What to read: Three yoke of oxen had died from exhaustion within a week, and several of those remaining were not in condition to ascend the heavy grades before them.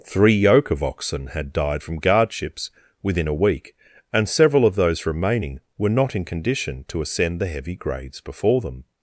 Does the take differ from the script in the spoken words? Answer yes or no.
yes